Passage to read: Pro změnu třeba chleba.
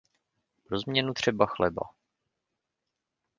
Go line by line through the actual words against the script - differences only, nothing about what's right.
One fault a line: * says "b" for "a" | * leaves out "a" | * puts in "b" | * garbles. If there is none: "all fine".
all fine